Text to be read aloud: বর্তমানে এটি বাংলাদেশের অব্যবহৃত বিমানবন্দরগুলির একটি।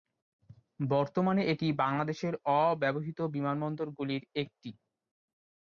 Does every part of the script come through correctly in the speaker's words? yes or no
yes